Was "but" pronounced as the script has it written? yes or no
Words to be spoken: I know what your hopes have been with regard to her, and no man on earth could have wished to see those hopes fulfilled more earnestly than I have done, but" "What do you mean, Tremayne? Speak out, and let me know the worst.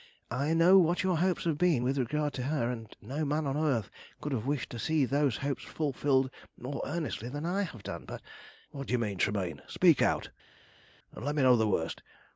yes